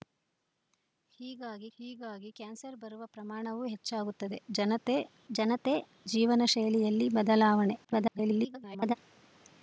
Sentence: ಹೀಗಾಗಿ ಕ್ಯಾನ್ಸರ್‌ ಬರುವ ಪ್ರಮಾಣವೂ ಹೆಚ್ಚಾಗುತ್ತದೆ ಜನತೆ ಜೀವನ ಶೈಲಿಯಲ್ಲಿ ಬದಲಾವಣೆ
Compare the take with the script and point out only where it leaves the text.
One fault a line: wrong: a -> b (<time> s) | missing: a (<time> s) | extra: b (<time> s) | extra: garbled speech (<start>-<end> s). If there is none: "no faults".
extra: ಹೀಗಾಗಿ (1.8 s)
extra: ಜನತೆ (5.3 s)
extra: garbled speech (7.8-8.9 s)